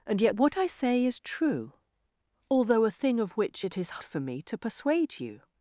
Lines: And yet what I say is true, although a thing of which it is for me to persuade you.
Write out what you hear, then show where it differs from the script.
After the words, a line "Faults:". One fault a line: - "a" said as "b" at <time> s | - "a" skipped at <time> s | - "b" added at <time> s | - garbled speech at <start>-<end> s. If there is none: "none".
And yet what I say is true, although a thing of which it is for me to persuade you.
Faults:
none